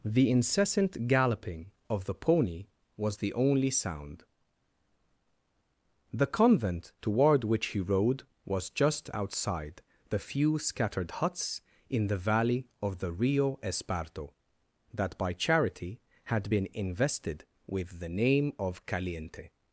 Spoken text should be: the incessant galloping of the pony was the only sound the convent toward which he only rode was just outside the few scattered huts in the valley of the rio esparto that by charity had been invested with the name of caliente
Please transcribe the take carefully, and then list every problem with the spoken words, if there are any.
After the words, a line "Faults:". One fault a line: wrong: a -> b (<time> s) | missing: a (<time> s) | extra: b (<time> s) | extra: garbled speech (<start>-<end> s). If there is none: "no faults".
the incessant galloping of the pony was the only sound the convent toward which he rode was just outside the few scattered huts in the valley of the rio esparto that by charity had been invested with the name of caliente
Faults:
missing: only (7.8 s)